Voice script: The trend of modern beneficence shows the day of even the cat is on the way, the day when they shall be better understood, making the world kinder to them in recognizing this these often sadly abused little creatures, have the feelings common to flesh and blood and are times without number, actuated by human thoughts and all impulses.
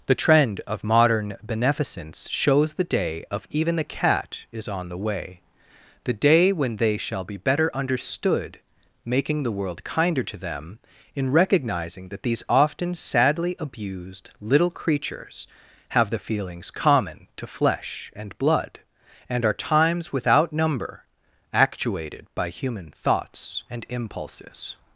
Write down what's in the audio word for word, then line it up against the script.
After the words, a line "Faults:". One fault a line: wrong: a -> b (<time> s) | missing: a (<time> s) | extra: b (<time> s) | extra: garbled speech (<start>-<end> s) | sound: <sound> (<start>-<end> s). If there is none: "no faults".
The trend of modern beneficence shows the day of even the cat is on the way, the day when they shall be better understood, making the world kinder to them in recognizing that these often sadly abused little creatures, have the feelings common to flesh and blood and are times without number, actuated by human thoughts and impulses.
Faults:
wrong: this -> that (12.1 s)
missing: all (23.9 s)